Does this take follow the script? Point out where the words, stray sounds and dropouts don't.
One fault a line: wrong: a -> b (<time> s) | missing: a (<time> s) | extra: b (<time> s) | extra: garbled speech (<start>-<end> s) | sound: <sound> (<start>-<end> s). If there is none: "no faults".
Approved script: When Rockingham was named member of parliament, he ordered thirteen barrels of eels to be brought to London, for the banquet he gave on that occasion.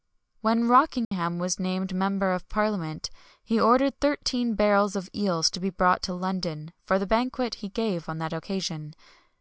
sound: dropout (1.0-1.1 s)